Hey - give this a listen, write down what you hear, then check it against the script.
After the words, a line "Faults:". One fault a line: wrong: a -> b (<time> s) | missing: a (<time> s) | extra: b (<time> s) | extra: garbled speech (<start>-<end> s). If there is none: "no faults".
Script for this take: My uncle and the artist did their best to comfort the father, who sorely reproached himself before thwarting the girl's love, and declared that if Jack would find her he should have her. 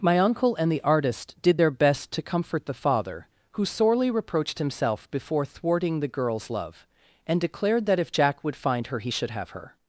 My uncle and the artist did their best to comfort the father, who sorely reproached himself before thwarting the girl's love, and declared that if Jack would find her he should have her.
Faults:
no faults